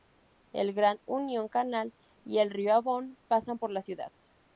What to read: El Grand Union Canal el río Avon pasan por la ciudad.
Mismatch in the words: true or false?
true